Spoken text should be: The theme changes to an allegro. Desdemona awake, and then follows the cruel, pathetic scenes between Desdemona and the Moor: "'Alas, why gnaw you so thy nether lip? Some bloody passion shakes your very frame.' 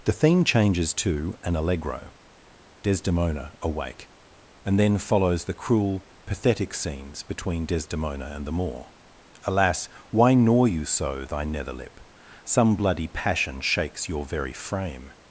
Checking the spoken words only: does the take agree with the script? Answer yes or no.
yes